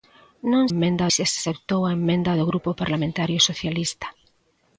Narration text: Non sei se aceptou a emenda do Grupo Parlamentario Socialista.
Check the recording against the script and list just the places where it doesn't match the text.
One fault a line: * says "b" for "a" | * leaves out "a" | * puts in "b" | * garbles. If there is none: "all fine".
* says "emenda" for "sei"